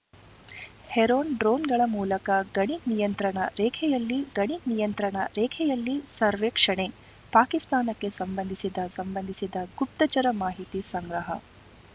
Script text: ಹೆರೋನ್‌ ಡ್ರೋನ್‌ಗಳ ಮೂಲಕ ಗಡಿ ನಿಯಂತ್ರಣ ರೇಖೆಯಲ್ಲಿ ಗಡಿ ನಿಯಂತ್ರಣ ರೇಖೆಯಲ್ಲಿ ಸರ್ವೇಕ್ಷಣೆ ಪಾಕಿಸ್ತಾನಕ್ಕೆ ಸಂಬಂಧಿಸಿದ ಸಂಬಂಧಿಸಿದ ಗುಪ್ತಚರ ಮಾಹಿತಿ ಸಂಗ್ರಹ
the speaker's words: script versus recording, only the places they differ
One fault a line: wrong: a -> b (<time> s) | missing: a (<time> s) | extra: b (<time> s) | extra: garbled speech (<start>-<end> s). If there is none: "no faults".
no faults